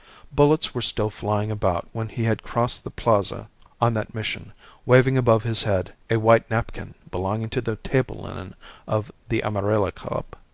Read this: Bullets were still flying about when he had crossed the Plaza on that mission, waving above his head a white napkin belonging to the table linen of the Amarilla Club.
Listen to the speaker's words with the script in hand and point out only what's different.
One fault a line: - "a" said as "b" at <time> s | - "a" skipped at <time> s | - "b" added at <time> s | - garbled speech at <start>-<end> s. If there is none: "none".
none